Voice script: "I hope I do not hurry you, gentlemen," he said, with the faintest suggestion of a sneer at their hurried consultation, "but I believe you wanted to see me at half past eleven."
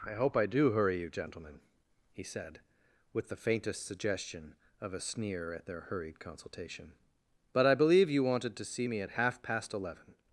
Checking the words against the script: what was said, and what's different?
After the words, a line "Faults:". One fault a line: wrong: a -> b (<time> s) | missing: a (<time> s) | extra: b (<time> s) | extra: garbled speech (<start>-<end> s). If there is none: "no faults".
"I hope I do hurry you, gentlemen," he said, with the faintest suggestion of a sneer at their hurried consultation, "but I believe you wanted to see me at half past eleven."
Faults:
missing: not (0.7 s)